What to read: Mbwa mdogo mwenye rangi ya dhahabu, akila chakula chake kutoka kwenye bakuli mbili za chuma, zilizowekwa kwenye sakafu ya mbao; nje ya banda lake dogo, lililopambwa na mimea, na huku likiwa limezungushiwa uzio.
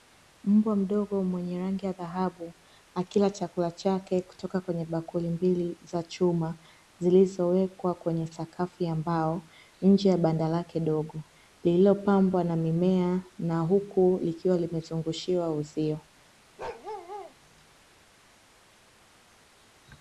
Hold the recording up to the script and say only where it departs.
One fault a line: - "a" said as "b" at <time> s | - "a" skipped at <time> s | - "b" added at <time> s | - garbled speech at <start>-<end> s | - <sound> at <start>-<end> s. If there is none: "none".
- bark at 16.6-17.3 s